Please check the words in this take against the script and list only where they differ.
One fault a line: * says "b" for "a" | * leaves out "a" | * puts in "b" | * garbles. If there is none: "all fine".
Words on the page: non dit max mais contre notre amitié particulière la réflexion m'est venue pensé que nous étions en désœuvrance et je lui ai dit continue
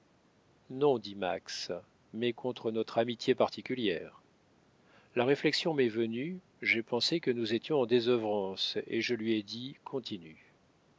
* puts in "j'ai"